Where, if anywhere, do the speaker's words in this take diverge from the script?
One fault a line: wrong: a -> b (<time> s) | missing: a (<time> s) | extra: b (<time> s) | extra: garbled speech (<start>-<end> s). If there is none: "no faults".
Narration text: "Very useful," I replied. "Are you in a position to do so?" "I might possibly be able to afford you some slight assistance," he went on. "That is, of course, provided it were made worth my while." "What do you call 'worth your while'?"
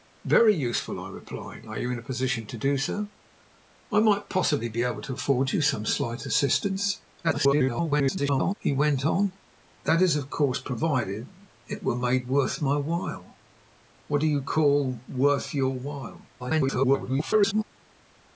extra: garbled speech (7.2-8.5 s)
extra: garbled speech (16.4-17.6 s)